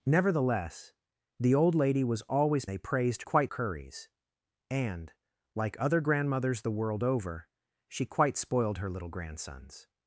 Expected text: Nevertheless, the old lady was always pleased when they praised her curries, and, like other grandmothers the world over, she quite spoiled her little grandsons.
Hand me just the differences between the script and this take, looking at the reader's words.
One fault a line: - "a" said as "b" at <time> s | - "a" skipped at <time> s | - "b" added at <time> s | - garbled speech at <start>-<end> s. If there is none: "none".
- "pleased when" skipped at 2.6 s
- "her" said as "quite" at 3.2 s